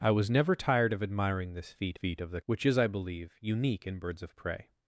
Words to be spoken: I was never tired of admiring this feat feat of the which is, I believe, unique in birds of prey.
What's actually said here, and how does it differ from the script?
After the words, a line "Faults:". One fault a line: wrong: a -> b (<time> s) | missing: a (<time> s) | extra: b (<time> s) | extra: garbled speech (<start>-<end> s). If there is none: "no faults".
I was never tired of admiring this feat feat of the which is, I believe, unique in birds of prey.
Faults:
no faults